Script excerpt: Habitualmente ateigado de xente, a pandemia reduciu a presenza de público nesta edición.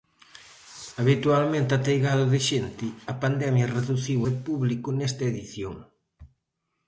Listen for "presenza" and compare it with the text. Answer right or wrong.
wrong